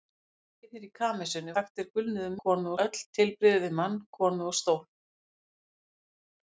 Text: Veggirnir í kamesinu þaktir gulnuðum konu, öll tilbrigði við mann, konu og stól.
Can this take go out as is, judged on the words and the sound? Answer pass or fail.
pass